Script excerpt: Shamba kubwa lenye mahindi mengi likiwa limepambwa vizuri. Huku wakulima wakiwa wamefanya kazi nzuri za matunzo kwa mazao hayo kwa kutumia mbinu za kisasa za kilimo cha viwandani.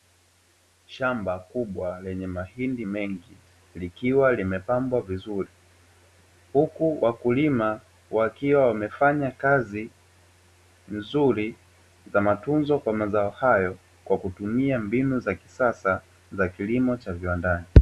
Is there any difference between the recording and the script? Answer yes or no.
no